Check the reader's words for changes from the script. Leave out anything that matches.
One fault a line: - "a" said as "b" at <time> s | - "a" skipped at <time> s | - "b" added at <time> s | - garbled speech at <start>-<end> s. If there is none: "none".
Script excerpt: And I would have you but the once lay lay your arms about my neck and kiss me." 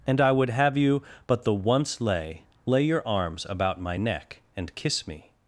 none